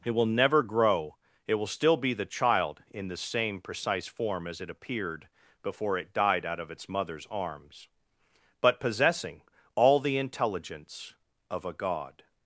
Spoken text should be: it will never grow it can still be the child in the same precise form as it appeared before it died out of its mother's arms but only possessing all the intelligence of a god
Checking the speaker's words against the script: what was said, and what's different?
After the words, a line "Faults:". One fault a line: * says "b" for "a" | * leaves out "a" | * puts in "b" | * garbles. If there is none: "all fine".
it will never grow it will still be the child in the same precise form as it appeared before it died out of its mother's arms but possessing all the intelligence of a god
Faults:
* says "will" for "can"
* leaves out "only"